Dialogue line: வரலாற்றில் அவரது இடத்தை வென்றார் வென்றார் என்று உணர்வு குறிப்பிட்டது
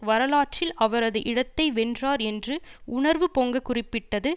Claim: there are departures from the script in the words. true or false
true